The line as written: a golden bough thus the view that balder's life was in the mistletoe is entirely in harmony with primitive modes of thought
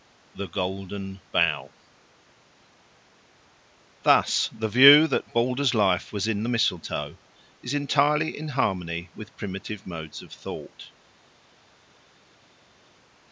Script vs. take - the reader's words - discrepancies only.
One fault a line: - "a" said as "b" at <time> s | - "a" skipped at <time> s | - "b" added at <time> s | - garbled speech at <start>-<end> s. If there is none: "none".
- "a" said as "the" at 0.3 s